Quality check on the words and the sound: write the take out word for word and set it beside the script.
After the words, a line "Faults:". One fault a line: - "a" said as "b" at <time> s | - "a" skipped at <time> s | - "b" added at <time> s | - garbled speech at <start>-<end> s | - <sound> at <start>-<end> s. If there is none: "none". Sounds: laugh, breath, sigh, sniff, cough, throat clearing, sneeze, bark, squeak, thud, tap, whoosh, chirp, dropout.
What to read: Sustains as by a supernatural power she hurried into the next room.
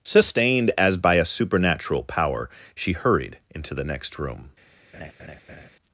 Sustained as by a supernatural power she hurried into the next room.
Faults:
- "Sustains" said as "Sustained" at 0.0 s
- laugh at 4.9-5.7 s